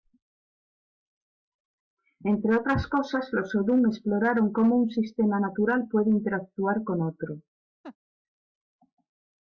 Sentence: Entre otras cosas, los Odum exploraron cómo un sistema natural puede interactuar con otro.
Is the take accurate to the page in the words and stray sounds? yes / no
no